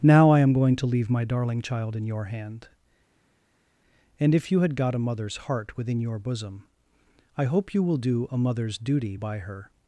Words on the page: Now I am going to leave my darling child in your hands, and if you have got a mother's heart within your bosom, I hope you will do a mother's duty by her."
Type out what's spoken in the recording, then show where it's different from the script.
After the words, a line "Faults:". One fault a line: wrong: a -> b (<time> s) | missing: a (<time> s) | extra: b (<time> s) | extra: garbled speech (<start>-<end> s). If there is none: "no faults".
Now I am going to leave my darling child in your hand, and if you had got a mother's heart within your bosom, I hope you will do a mother's duty by her."
Faults:
wrong: hands -> hand (2.2 s)
wrong: have -> had (4.6 s)